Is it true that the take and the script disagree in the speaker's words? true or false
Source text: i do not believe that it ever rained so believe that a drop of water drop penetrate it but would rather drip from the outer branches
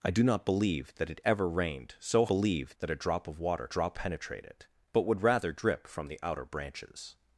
false